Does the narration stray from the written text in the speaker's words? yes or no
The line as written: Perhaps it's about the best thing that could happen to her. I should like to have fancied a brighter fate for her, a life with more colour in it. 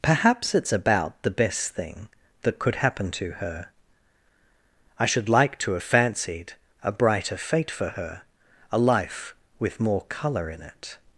no